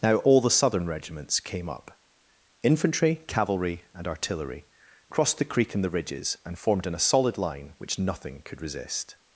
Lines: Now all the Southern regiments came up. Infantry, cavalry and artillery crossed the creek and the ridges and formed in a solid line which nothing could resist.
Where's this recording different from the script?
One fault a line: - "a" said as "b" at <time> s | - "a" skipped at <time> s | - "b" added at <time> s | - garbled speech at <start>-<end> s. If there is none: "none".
none